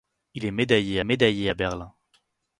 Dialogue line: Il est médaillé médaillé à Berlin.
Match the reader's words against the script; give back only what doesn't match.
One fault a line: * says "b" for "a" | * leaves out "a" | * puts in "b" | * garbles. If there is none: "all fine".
all fine